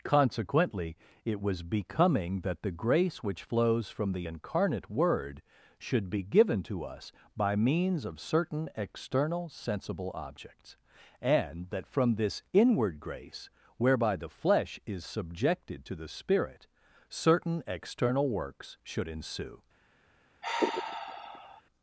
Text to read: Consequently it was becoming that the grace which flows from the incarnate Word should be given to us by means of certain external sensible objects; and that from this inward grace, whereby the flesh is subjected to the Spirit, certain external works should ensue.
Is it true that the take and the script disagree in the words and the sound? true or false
true